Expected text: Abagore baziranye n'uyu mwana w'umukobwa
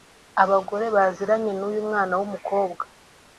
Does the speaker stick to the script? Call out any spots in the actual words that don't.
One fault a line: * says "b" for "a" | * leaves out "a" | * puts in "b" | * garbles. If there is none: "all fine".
all fine